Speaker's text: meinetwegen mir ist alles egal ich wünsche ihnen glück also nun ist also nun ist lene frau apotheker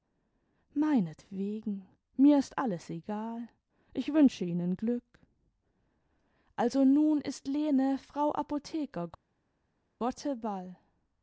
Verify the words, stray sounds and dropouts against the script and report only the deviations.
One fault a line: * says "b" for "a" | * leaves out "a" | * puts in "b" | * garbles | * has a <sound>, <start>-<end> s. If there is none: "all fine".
* leaves out "also nun ist"